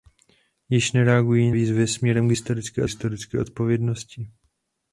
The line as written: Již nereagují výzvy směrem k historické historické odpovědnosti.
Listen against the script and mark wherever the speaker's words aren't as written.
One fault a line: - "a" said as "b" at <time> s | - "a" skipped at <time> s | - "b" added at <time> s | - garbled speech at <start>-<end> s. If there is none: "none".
none